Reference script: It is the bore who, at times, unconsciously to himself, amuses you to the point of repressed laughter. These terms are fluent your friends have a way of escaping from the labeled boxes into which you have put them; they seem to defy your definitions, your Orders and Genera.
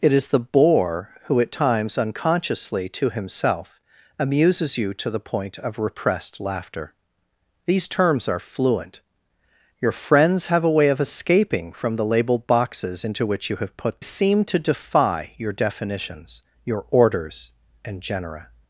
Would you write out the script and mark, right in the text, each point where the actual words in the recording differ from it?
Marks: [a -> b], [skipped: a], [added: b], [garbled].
It is the bore who, at times, unconsciously to himself, amuses you to the point of repressed laughter. These terms are fluent your friends have a way of escaping from the labeled boxes into which you have put [skipped: them; they] seem to defy your definitions, your Orders and Genera.